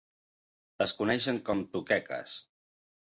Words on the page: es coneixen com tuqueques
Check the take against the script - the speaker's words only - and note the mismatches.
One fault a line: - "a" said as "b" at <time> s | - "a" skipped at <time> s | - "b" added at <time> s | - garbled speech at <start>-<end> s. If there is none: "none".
none